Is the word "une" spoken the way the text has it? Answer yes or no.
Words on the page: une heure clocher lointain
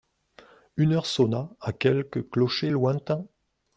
yes